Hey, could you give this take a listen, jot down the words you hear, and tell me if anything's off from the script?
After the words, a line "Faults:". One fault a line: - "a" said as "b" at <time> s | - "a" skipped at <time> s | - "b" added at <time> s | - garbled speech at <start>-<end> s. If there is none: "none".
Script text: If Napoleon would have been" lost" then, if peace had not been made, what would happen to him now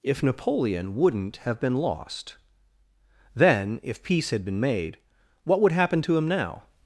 If Napoleon wouldn't have been" lost" then, if peace had been made, what would happen to him now
Faults:
- "would" said as "wouldn't" at 0.9 s
- "not" skipped at 4.4 s